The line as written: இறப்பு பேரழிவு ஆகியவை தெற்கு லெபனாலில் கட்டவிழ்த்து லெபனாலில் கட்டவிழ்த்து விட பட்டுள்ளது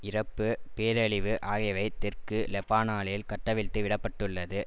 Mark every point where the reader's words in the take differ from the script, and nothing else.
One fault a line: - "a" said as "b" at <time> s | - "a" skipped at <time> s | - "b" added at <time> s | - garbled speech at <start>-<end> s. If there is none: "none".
- "லெபனாலில் கட்டவிழ்த்து" skipped at 3.8 s